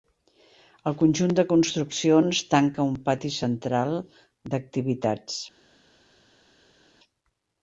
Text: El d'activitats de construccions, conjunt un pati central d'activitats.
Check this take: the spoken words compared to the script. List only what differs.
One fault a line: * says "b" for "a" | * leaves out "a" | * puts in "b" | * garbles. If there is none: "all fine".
* says "conjunt" for "d'activitats"
* says "tanca" for "conjunt"